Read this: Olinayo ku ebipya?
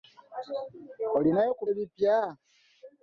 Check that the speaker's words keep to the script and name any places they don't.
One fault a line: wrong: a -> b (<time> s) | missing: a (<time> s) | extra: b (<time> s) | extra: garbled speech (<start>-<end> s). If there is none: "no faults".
no faults